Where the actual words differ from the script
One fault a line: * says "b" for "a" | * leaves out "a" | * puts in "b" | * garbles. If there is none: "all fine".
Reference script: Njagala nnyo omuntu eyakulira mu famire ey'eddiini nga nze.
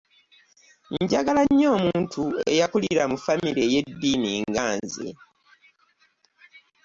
all fine